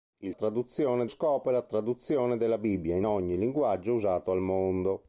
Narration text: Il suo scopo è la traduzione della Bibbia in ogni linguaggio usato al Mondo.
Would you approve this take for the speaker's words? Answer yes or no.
no